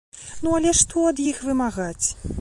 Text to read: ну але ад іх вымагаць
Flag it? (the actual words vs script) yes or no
yes